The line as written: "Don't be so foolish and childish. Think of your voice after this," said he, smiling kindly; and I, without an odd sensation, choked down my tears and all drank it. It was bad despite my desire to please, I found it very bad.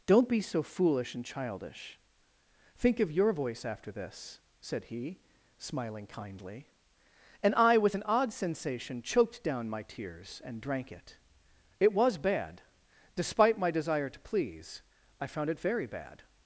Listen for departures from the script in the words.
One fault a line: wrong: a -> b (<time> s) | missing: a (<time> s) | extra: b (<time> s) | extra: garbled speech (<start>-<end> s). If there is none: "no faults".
wrong: without -> with (7.8 s)
missing: all (10.6 s)